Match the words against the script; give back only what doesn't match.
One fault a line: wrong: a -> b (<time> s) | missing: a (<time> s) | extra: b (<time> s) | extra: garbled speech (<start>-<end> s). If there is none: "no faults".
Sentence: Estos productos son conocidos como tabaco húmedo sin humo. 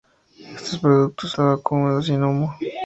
missing: son conocidos como (1.3 s)